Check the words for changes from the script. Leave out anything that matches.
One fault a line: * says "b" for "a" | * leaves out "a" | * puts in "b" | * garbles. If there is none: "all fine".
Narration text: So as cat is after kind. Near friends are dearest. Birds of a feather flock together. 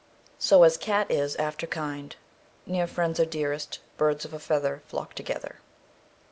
all fine